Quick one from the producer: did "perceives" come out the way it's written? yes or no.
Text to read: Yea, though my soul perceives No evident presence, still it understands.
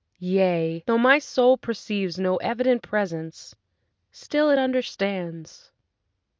yes